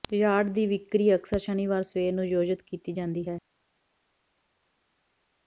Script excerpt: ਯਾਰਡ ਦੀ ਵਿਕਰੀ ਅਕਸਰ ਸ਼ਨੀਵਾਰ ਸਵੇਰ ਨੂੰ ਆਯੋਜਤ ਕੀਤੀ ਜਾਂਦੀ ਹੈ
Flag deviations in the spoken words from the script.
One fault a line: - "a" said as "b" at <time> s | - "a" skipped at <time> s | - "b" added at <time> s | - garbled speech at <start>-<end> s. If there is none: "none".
none